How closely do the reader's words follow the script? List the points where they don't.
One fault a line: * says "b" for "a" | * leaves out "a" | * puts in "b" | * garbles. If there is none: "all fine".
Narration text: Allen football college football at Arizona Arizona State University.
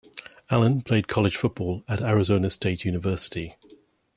* says "played" for "football"
* leaves out "Arizona"